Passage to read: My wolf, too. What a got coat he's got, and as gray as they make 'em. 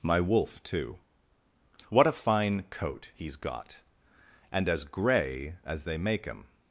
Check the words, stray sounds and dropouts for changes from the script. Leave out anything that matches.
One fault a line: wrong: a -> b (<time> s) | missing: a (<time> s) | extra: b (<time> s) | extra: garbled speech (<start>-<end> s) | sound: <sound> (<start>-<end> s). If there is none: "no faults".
wrong: got -> fine (2.1 s)